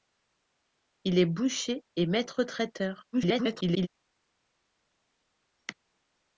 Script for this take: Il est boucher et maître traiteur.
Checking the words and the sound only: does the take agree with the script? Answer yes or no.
no